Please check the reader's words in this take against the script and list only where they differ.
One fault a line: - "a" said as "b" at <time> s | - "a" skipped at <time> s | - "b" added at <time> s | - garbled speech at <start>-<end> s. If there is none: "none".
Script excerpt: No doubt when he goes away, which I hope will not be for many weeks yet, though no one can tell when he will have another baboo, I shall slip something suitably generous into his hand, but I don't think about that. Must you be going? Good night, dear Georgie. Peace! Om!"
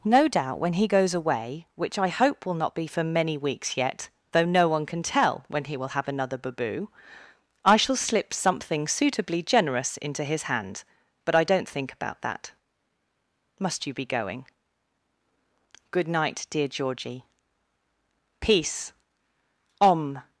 none